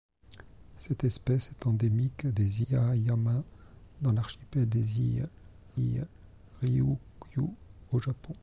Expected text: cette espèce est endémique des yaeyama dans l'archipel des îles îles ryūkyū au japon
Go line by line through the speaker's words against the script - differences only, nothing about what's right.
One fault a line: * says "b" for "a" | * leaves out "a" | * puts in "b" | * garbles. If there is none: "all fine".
all fine